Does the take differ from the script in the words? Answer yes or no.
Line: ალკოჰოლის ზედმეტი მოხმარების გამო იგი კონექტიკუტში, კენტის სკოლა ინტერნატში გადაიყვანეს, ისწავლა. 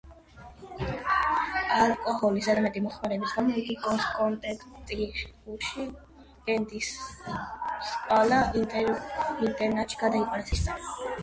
no